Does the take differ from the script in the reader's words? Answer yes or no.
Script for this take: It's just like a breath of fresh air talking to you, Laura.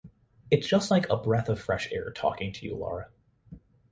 no